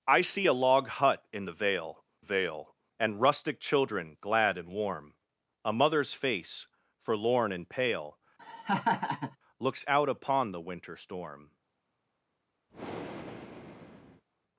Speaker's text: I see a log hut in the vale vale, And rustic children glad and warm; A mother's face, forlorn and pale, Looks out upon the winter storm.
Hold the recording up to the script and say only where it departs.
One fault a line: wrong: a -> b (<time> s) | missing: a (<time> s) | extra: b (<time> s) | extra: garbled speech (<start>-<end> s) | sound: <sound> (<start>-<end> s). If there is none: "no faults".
sound: laugh (8.4-9.4 s)
sound: breath (12.7-14.2 s)